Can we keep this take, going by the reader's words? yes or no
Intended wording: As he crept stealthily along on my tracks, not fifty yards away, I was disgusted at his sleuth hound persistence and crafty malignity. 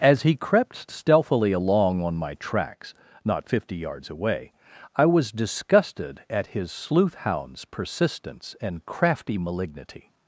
no